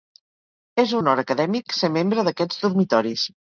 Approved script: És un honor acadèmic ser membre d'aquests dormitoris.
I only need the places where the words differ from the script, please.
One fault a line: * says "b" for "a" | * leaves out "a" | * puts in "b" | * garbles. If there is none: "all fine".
* leaves out "un"